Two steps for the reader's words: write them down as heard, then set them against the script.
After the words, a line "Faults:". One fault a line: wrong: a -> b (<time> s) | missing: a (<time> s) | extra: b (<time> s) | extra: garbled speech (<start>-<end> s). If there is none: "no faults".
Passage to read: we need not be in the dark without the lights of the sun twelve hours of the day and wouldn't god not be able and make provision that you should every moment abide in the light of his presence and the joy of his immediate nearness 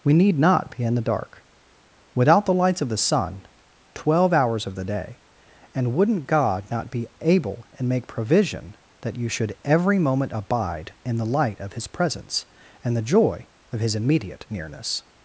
we need not be in the dark without the lights of the sun twelve hours of the day and wouldn't god not be able and make provision that you should every moment abide in the light of his presence and the joy of his immediate nearness
Faults:
no faults